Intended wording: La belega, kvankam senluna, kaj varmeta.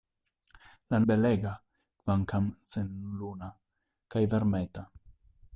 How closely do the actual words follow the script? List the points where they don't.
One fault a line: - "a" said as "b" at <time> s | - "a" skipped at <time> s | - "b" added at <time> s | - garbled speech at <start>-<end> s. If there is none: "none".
none